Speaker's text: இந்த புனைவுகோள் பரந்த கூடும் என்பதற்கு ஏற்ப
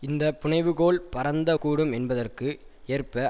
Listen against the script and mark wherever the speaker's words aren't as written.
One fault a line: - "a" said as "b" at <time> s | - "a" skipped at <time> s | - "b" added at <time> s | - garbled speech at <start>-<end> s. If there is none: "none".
none